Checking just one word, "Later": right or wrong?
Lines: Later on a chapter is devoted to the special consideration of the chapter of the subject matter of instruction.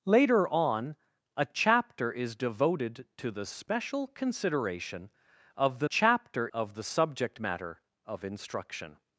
right